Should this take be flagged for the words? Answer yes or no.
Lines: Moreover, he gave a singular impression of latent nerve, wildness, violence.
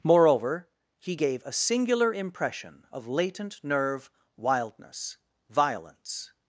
no